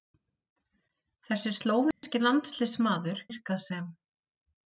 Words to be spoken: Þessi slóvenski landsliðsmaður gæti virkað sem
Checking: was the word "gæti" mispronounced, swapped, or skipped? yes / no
yes